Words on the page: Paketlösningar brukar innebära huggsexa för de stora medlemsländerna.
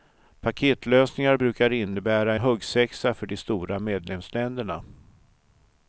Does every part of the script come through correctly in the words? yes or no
yes